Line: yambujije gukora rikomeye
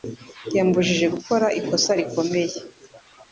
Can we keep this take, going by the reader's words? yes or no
no